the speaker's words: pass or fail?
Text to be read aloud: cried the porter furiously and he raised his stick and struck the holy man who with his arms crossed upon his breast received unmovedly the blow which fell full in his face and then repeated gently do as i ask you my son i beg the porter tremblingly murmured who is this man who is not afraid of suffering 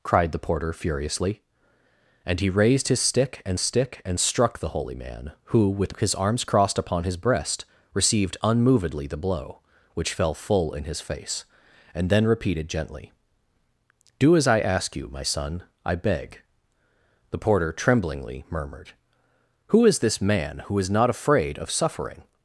fail